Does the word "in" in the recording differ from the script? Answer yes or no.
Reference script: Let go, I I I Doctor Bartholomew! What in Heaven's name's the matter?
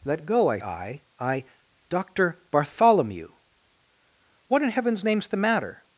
no